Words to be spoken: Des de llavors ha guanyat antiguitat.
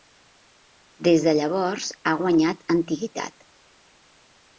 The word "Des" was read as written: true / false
true